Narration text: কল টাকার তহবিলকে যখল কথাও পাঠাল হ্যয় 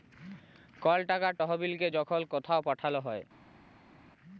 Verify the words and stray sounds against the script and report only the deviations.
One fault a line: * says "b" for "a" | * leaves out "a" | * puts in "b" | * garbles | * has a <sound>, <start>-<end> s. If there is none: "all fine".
all fine